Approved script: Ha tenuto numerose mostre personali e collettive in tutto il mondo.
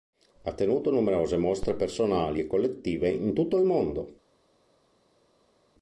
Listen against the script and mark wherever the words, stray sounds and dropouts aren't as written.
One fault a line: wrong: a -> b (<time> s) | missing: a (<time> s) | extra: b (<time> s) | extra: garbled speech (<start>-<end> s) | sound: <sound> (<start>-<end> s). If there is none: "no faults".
no faults